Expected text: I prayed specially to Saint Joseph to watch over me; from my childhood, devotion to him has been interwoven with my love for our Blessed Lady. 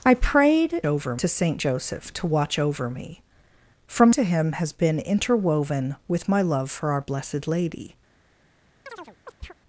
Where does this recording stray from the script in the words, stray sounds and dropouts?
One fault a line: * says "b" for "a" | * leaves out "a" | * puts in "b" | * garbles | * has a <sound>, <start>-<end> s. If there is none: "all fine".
* says "over" for "specially"
* leaves out "my childhood devotion"
* has a chirp, 8.9-9.5 s